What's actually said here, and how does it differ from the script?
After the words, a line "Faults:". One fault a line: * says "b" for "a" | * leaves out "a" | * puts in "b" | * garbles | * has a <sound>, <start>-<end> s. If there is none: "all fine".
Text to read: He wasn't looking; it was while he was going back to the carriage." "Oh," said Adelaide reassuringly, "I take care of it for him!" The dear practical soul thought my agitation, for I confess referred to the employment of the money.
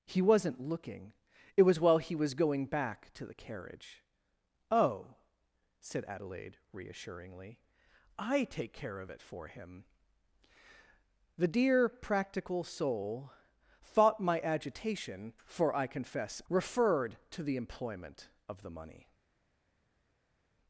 He wasn't looking; it was while he was going back to the carriage." "Oh," said Adelaide reassuringly, "I take care of it for him!" The dear practical soul thought my agitation, for I confess referred to the employment of the money.
Faults:
all fine